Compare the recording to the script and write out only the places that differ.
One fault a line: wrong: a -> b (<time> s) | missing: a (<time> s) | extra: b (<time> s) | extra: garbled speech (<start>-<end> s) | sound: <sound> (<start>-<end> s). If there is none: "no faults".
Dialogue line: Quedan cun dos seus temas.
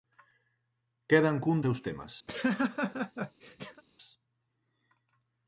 missing: dos (1.6 s)
sound: laugh (2.3-3.8 s)